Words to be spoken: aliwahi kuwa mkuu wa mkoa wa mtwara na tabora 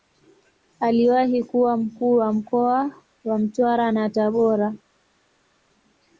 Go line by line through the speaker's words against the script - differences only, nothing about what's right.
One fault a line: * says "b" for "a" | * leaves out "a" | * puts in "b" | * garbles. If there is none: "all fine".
all fine